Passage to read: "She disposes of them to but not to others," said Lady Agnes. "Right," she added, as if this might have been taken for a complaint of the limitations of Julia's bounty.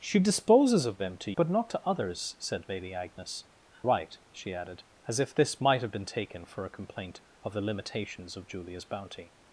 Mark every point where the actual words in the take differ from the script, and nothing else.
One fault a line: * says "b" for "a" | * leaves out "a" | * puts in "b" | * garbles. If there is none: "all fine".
all fine